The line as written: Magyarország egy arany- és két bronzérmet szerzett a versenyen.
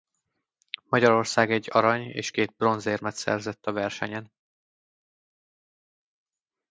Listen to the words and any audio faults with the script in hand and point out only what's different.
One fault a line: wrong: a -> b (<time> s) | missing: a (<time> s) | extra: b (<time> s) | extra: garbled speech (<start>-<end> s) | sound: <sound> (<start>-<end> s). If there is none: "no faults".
no faults